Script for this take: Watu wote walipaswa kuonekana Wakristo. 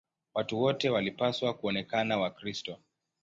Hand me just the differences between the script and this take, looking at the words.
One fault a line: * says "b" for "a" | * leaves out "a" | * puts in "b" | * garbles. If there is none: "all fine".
all fine